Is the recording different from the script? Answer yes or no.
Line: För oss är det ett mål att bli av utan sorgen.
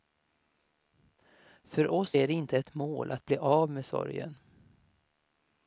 yes